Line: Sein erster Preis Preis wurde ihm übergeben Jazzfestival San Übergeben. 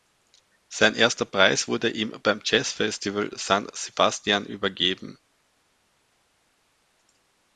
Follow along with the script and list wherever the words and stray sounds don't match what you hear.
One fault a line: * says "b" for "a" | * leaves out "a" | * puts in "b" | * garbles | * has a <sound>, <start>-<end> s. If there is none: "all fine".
* leaves out "Preis"
* says "beim" for "übergeben"
* puts in "Sebastian"